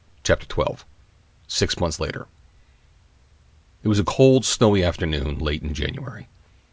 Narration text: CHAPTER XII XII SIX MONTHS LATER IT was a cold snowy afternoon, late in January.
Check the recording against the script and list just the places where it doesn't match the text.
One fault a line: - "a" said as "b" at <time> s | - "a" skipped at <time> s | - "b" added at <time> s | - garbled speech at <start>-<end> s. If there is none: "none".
- "XII" skipped at 0.8 s